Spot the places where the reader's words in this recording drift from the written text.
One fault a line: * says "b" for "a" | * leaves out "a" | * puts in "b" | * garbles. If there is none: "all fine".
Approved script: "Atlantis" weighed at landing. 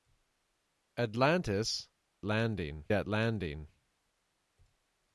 * says "landing" for "weighed"